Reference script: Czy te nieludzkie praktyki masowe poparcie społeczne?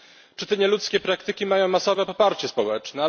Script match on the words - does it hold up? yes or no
no